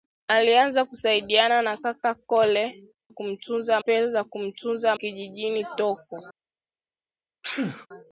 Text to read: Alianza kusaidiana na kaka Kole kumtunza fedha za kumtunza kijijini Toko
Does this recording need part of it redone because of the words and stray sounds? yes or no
yes